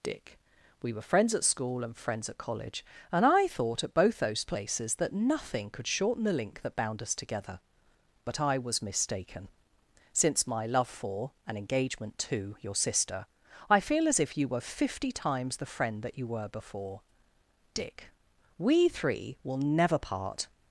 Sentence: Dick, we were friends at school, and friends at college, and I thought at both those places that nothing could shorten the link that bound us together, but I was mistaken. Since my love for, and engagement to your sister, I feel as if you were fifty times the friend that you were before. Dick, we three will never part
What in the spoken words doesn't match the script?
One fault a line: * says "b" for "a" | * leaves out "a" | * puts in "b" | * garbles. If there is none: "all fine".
all fine